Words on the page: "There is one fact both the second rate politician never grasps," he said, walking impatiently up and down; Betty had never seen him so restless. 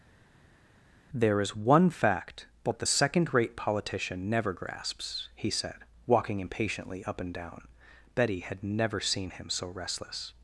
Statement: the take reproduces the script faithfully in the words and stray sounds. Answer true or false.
true